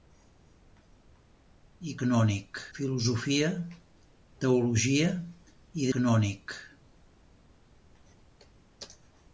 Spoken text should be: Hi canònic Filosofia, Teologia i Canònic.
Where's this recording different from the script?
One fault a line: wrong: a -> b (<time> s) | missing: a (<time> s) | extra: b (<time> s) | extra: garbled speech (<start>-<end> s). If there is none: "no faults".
no faults